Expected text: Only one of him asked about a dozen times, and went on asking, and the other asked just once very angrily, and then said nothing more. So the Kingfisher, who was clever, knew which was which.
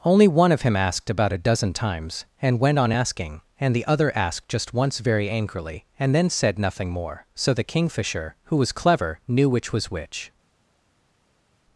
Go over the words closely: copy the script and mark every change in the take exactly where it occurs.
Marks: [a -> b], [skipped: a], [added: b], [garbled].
Only one of him asked about a dozen times, and went on asking, and the other asked just once very angrily, and then said nothing more. So the Kingfisher, who was clever, knew which was which.